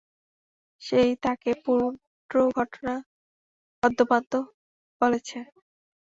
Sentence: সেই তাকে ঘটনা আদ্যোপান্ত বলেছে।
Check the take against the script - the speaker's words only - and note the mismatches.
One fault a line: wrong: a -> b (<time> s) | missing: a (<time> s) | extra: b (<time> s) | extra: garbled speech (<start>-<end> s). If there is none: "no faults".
extra: পুরো (1.6 s)